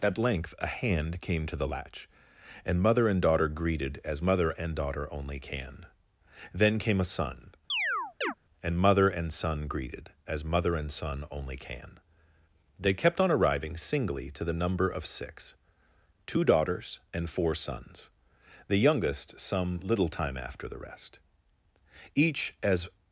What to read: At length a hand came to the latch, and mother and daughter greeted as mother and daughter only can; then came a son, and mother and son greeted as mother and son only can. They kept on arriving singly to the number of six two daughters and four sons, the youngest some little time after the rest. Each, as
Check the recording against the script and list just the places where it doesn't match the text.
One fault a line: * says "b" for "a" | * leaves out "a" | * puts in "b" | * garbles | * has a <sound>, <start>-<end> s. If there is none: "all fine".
* has a chirp, 7.7-8.3 s